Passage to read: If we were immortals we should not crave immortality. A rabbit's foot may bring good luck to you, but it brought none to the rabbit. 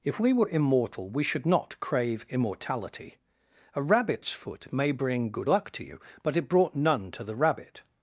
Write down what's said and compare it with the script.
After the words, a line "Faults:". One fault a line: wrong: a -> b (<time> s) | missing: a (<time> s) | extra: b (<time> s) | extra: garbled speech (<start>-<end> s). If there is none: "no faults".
If we were immortal we should not crave immortality. A rabbit's foot may bring good luck to you, but it brought none to the rabbit.
Faults:
wrong: immortals -> immortal (0.5 s)